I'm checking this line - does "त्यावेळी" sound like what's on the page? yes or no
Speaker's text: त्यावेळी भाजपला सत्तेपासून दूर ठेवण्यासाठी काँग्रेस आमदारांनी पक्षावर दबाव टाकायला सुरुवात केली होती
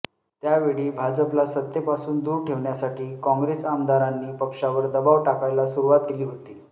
yes